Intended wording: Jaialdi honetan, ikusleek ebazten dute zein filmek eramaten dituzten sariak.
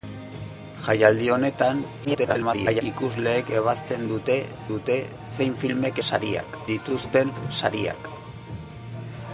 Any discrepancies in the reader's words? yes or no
yes